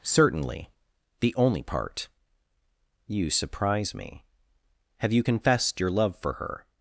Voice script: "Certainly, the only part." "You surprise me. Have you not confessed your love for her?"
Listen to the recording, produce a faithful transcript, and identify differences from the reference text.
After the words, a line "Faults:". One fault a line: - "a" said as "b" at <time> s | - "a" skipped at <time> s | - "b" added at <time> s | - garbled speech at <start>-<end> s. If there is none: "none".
"Certainly, the only part." "You surprise me. Have you confessed your love for her?"
Faults:
- "not" skipped at 5.2 s